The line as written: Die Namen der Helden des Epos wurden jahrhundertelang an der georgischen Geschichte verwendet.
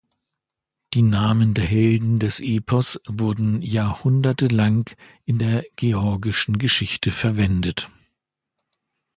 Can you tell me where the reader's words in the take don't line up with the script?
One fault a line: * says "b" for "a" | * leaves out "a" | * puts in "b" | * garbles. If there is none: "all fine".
* says "in" for "an"